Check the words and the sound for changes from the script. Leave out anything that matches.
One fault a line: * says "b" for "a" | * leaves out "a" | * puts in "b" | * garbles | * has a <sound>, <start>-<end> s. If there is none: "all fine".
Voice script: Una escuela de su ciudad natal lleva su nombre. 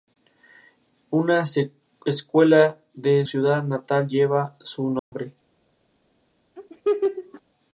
* leaves out "su"
* has a dropout, 5.0-5.1 s
* has a laugh, 6.6-7.4 s